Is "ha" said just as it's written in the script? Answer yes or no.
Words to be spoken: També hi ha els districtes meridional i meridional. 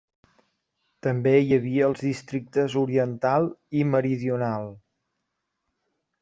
no